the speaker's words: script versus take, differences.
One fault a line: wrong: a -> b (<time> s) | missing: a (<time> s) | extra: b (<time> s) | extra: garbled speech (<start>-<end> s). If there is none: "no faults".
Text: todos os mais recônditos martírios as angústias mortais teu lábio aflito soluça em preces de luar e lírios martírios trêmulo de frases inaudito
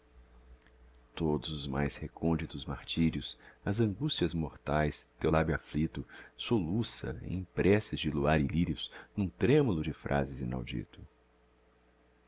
wrong: martírios -> num (9.2 s)